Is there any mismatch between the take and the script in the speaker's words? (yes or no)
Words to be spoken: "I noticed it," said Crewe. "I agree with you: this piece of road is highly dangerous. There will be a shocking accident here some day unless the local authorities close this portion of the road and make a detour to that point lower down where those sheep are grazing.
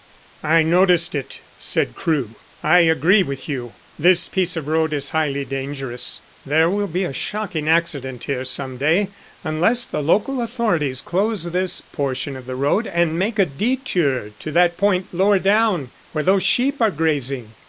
no